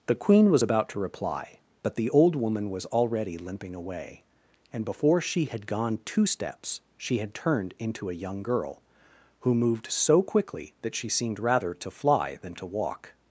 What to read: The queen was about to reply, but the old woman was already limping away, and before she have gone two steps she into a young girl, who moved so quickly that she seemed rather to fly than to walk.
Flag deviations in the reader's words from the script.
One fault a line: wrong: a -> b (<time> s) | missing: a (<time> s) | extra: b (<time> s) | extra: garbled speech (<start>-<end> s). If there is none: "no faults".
wrong: have -> had (5.5 s)
extra: had turned (7.2 s)